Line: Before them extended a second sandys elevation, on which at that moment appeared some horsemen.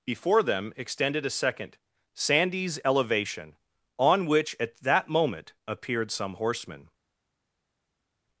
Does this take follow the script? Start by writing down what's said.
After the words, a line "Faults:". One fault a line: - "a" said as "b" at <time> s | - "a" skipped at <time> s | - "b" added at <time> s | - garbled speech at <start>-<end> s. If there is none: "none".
Before them extended a second sandys elevation, on which at that moment appeared some horsemen.
Faults:
none